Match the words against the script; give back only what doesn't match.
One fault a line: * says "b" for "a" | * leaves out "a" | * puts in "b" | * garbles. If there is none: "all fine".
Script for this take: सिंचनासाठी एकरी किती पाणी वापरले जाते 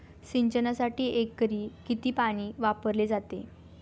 all fine